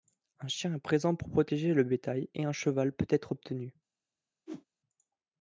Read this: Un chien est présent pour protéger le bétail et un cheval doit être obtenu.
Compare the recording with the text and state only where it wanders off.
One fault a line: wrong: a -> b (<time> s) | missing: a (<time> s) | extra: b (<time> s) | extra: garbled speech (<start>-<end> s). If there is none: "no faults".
wrong: doit -> peut (2.9 s)